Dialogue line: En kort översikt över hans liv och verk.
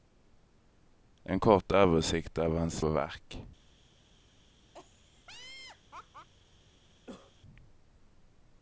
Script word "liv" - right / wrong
wrong